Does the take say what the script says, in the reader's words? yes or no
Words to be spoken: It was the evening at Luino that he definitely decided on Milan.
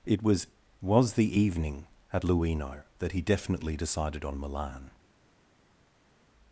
no